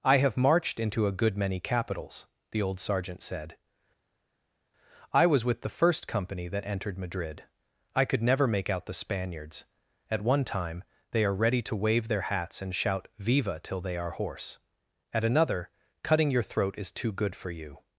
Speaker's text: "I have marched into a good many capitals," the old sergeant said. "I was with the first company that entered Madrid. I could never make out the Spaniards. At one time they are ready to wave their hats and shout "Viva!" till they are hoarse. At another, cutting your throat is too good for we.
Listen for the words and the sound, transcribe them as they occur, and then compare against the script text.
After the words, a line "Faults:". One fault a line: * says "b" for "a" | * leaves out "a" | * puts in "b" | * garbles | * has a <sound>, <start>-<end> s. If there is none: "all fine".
"I have marched into a good many capitals," the old sergeant said. "I was with the first company that entered Madrid. I could never make out the Spaniards. At one time they are ready to wave their hats and shout "Viva!" till they are hoarse. At another, cutting your throat is too good for you.
Faults:
* says "you" for "we"